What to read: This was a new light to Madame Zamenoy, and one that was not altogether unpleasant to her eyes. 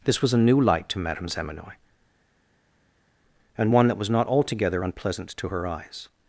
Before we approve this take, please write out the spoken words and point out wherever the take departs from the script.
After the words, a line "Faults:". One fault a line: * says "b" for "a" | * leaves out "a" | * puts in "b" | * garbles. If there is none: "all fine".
This was a new light to Madame Zamenoy, and one that was not altogether unpleasant to her eyes.
Faults:
all fine